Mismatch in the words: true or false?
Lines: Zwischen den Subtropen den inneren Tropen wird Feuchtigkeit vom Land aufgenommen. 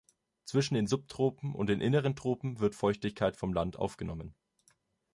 true